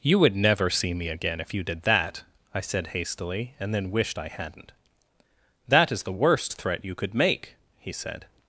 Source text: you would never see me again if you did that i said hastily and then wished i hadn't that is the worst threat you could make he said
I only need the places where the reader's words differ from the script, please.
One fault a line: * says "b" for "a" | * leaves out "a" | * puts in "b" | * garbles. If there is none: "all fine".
all fine